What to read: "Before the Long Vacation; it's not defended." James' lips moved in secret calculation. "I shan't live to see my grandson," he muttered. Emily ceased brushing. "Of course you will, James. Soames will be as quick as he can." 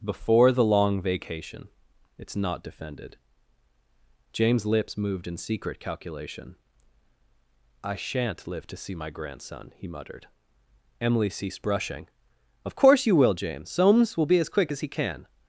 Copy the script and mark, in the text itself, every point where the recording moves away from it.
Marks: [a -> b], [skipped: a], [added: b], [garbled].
"Before the Long Vacation; it's not defended." James' lips moved in secret calculation. "I shan't live to see my grandson," he muttered. Emily ceased brushing. "Of course you will, James. Soames will be as quick as he can."